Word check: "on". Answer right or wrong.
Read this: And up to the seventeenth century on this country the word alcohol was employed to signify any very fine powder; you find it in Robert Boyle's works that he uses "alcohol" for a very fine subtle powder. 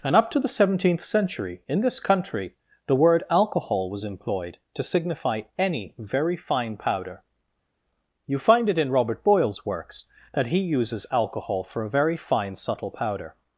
wrong